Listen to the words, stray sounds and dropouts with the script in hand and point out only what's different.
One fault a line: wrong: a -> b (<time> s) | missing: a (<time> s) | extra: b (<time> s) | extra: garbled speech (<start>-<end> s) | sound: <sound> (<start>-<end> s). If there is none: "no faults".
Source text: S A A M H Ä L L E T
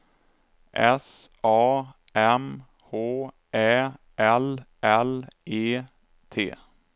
missing: A (1.9 s)